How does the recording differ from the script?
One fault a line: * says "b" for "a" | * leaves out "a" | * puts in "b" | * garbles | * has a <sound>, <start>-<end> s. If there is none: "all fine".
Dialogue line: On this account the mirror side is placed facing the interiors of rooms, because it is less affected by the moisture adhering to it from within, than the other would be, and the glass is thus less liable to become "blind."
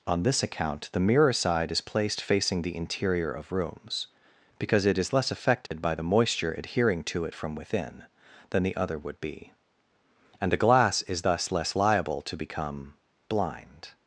* says "interior" for "interiors"
* has a dropout, 5.7-5.7 s